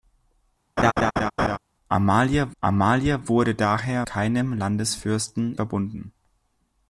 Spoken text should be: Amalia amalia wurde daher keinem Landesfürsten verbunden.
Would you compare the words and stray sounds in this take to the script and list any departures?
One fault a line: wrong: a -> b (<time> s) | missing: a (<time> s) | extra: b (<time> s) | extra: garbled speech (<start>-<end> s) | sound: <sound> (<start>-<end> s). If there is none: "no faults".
sound: laugh (0.8-1.6 s)